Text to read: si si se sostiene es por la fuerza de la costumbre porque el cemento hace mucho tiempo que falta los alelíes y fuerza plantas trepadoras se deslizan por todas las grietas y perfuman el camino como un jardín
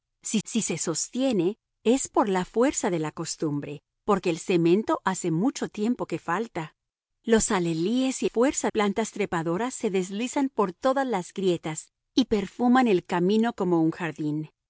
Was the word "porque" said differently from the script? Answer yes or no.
no